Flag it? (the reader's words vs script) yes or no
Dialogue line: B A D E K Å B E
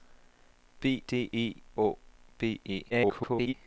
yes